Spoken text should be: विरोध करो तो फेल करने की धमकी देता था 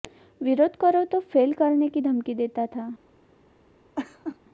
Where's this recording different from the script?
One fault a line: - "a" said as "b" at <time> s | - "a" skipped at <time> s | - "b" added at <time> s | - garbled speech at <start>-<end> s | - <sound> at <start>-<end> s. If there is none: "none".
- laugh at 4.0-4.4 s